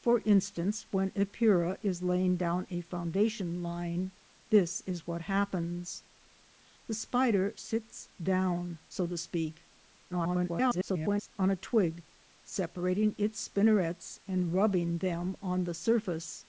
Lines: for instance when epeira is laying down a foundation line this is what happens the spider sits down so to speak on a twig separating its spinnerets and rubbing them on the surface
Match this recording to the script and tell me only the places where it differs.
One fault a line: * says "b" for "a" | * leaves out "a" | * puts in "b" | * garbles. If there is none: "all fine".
* garbles